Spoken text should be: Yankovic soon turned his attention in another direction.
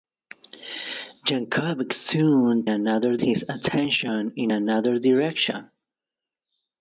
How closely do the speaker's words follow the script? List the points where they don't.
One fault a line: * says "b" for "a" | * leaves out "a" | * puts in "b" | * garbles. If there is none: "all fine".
* says "another" for "turned"